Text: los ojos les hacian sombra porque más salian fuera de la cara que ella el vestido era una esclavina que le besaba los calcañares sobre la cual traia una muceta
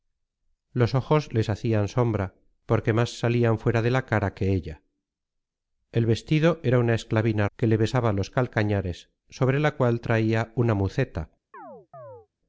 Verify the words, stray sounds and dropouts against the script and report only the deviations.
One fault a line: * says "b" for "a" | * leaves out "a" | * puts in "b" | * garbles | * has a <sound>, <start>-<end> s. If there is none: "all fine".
* has a chirp, 11.5-12.3 s